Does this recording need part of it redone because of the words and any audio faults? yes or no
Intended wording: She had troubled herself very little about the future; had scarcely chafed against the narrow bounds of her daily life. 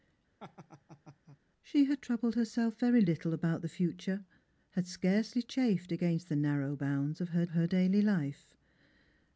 yes